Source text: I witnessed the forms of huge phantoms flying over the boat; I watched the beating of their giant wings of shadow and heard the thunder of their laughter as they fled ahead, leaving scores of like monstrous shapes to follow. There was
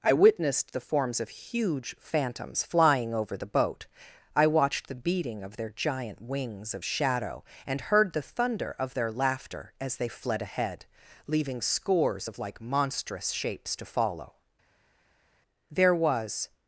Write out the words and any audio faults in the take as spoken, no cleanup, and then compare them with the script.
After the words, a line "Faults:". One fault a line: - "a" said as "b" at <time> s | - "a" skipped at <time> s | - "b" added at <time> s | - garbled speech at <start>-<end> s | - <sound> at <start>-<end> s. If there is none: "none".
I witnessed the forms of huge phantoms flying over the boat; I watched the beating of their giant wings of shadow and heard the thunder of their laughter as they fled ahead, leaving scores of like monstrous shapes to follow. There was
Faults:
none